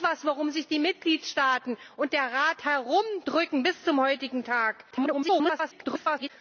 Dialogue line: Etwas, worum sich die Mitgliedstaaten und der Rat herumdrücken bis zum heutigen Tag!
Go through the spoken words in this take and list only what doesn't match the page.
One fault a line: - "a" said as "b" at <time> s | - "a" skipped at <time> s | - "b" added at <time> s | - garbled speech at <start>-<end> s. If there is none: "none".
- garbled speech at 4.9-6.3 s